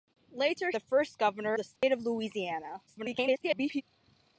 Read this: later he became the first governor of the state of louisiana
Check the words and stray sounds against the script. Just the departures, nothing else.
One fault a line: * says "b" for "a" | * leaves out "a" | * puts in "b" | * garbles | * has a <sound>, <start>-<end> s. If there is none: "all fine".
* leaves out "he became"
* leaves out "of"
* has a dropout, 1.8-1.8 s
* garbles